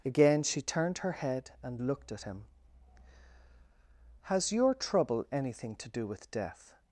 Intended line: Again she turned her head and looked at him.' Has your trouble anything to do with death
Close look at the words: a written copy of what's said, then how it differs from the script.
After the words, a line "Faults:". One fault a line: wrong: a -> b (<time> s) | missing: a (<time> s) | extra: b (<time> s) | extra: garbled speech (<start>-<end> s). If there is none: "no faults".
Again she turned her head and looked at him.' Has your trouble anything to do with death
Faults:
no faults